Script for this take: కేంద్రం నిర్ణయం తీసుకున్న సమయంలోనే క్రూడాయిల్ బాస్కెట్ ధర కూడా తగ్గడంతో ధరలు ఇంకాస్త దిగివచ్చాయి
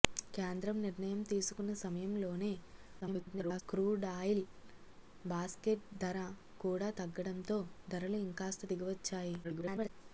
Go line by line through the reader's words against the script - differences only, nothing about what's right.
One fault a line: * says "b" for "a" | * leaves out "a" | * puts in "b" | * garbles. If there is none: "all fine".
* garbles
* garbles